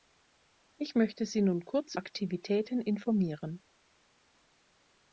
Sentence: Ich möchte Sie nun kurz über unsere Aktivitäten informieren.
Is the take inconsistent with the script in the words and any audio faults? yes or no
yes